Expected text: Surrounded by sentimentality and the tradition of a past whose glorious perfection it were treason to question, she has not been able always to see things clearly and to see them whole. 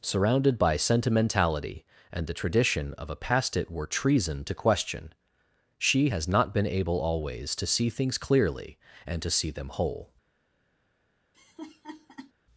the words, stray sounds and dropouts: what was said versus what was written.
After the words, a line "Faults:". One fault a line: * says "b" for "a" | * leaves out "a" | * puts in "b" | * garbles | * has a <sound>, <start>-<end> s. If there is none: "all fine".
Surrounded by sentimentality and the tradition of a past it were treason to question, she has not been able always to see things clearly and to see them whole.
Faults:
* leaves out "whose glorious perfection"
* has a laugh, 11.3-12.3 s